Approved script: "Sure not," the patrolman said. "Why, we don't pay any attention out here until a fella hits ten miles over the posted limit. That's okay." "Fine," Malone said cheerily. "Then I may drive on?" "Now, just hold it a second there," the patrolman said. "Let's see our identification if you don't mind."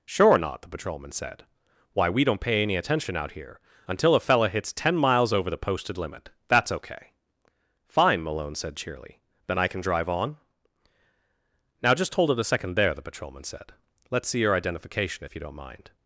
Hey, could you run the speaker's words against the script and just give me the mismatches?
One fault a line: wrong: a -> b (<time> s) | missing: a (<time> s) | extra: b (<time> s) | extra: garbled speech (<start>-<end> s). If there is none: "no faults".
wrong: may -> can (9.7 s)
wrong: our -> your (14.4 s)